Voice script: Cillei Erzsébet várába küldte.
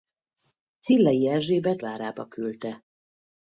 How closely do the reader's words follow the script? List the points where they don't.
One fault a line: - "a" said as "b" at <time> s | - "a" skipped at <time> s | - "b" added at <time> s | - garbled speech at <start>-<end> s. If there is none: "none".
none